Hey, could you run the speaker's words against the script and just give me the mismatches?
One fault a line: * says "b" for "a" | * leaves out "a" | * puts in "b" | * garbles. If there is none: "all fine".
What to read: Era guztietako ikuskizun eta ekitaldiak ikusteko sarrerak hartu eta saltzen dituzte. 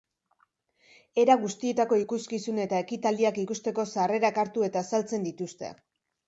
all fine